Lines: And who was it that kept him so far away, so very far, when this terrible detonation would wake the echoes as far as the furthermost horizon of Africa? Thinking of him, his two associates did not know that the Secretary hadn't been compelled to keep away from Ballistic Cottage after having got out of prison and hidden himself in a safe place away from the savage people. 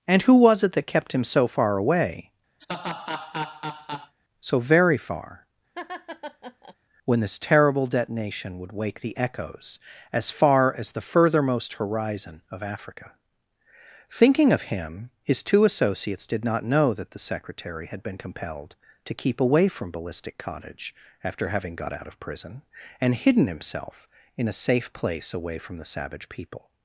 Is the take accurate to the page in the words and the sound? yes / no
no